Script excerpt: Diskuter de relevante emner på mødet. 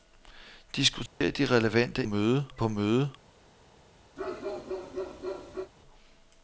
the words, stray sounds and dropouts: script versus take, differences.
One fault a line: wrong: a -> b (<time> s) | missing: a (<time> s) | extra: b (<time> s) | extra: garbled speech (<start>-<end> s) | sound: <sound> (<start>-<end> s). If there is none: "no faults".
sound: dropout (1.1-1.2 s)
wrong: emner -> mødet (2.0 s)
sound: bark (4.2-5.7 s)